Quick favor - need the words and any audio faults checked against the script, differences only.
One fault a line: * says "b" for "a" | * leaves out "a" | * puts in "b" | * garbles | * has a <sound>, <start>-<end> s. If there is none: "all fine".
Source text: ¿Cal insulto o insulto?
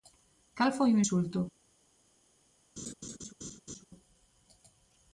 * says "foi" for "insulto"
* has a laugh, 2.8-3.8 s